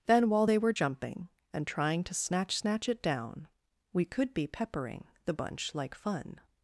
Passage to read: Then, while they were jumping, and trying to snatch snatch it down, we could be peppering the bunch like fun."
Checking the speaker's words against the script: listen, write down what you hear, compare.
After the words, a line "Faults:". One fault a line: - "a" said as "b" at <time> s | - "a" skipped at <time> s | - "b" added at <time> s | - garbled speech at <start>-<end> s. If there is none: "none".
Then, while they were jumping, and trying to snatch snatch it down, we could be peppering the bunch like fun."
Faults:
none